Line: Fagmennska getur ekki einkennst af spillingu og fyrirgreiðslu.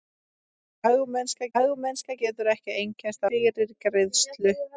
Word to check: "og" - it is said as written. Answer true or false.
false